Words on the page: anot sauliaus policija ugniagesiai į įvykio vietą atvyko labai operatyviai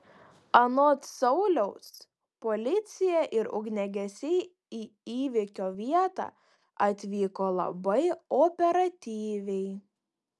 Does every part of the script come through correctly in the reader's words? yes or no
no